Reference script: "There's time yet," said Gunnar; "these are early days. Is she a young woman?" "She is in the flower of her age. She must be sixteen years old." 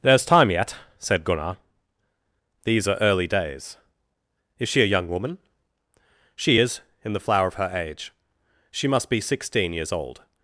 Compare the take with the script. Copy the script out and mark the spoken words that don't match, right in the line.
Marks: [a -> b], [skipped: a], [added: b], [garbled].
"There's time yet," said Gunnar; "these are early days. Is she a young woman?" "She is in the flower of her age. She must be sixteen years old."